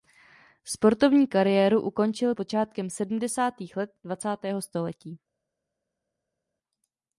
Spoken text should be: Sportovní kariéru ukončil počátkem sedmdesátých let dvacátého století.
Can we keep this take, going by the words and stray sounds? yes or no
yes